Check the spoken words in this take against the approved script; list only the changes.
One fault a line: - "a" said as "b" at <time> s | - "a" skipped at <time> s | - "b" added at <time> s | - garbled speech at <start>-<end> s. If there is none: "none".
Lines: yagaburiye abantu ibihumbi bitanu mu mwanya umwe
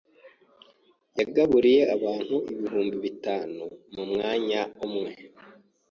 none